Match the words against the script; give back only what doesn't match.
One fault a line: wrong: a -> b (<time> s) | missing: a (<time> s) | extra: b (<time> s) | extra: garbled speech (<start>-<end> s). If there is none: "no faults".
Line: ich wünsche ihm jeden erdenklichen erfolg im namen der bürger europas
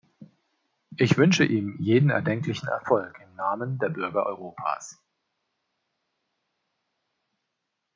no faults